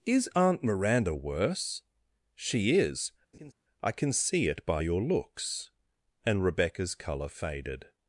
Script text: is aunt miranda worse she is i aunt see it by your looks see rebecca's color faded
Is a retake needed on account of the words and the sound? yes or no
yes